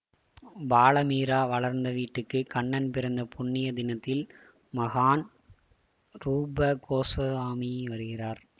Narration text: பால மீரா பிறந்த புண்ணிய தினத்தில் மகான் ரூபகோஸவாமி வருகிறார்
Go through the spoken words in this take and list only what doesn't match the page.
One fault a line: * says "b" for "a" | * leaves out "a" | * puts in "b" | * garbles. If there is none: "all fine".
* puts in "வளர்ந்த வீட்டுக்கு கண்ணன்"